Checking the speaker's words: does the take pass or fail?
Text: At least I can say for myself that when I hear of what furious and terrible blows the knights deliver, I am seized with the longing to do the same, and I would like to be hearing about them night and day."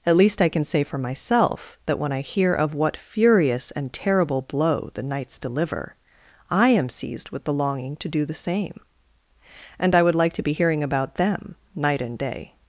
fail